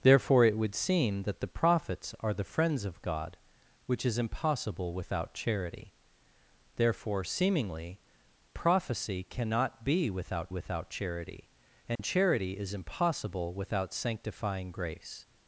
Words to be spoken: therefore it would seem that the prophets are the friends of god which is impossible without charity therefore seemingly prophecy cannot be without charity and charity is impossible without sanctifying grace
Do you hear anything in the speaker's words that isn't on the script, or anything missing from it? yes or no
yes